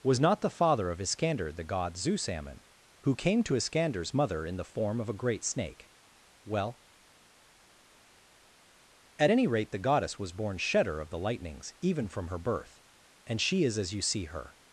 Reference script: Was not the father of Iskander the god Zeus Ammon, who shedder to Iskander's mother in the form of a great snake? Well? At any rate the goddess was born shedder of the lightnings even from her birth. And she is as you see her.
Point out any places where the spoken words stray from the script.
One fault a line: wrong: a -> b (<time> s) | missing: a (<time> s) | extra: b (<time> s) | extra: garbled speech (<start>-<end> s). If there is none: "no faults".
wrong: shedder -> came (3.1 s)